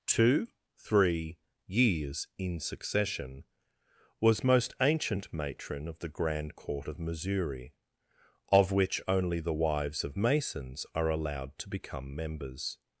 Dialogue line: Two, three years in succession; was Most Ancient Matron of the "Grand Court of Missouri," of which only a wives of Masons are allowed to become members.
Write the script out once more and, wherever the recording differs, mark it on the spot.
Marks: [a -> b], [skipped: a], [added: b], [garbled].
Two, three years in succession; was Most Ancient Matron of the "Grand Court of Missouri," of which only [a -> the] wives of Masons are allowed to become members.